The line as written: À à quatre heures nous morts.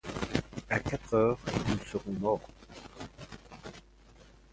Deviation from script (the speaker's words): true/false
true